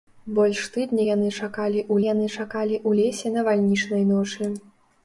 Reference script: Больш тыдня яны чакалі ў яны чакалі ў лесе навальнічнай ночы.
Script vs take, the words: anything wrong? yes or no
no